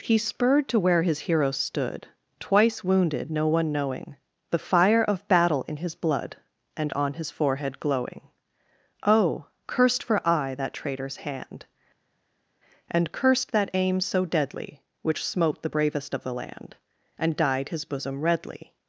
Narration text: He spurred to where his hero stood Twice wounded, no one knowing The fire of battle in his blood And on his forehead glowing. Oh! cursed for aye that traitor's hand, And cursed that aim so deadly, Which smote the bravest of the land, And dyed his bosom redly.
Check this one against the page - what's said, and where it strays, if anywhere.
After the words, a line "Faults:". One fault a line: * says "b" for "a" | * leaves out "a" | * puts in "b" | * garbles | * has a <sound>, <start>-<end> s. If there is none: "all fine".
He spurred to where his hero stood Twice wounded, no one knowing The fire of battle in his blood And on his forehead glowing. Oh! cursed for aye that traitor's hand, And cursed that aim so deadly, Which smote the bravest of the land, And dyed his bosom redly.
Faults:
all fine